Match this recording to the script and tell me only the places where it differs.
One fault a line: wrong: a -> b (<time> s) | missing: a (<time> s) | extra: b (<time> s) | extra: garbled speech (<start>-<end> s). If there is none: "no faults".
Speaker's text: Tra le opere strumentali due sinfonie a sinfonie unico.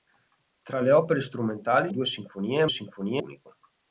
no faults